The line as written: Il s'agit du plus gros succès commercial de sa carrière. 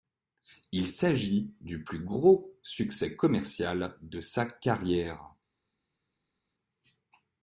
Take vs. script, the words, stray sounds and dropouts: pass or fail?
pass